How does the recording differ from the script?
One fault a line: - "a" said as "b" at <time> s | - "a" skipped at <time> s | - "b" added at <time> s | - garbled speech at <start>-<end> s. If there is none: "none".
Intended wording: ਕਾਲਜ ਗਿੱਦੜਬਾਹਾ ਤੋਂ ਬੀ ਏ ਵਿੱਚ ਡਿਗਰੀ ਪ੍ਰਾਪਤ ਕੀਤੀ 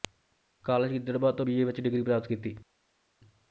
none